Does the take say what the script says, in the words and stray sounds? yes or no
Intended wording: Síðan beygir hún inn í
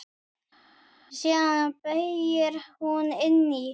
yes